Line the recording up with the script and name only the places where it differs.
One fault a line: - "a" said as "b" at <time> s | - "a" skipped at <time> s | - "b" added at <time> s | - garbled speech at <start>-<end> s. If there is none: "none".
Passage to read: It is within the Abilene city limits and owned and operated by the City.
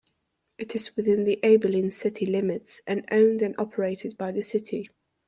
none